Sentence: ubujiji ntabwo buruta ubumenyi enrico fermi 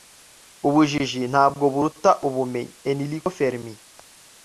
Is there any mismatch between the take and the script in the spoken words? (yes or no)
no